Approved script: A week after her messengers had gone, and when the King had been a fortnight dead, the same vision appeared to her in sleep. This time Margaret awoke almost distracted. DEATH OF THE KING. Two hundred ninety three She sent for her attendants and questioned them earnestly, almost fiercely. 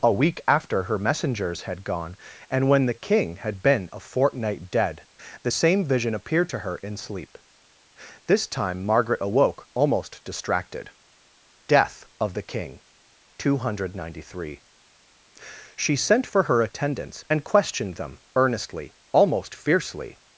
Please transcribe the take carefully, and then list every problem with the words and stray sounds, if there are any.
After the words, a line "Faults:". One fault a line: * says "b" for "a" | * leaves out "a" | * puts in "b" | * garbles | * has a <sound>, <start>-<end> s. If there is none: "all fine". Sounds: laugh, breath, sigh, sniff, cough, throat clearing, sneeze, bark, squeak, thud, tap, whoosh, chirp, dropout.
A week after her messengers had gone, and when the King had been a fortnight dead, the same vision appeared to her in sleep. This time Margaret awoke almost distracted. DEATH OF THE KING. Two hundred ninety three She sent for her attendants and questioned them earnestly, almost fiercely.
Faults:
all fine